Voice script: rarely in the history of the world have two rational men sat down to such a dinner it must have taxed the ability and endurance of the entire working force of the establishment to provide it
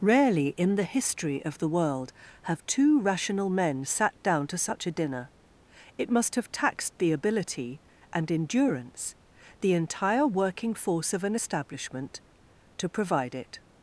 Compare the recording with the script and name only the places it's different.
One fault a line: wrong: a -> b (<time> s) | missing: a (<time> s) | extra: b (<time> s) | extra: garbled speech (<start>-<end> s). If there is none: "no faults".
missing: of (9.2 s)
wrong: the -> an (11.2 s)